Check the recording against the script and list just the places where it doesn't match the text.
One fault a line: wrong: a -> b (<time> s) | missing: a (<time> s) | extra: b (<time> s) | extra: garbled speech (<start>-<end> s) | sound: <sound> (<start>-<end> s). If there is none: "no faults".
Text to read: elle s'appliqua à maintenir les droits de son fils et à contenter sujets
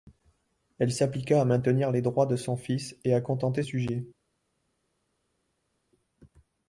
no faults